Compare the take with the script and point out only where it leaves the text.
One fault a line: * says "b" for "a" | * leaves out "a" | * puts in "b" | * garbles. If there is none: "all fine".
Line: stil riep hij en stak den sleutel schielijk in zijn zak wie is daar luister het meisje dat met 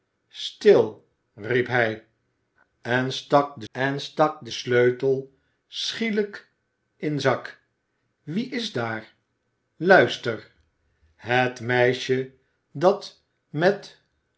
* puts in "en stak den"
* leaves out "zijn"